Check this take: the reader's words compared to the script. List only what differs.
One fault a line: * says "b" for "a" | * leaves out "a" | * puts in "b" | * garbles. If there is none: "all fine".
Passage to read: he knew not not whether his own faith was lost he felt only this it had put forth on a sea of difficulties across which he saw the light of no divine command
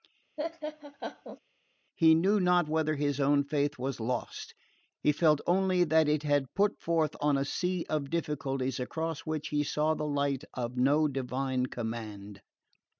* leaves out "not"
* says "that" for "this"